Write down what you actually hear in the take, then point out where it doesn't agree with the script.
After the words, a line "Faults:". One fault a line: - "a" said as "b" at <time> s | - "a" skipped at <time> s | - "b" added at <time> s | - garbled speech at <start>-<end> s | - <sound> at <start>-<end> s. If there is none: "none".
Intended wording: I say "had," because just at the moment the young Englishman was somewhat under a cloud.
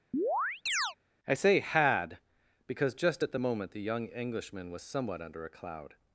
I say "had," because just at the moment the young Englishman was somewhat under a cloud.
Faults:
- chirp at 0.1-1.0 s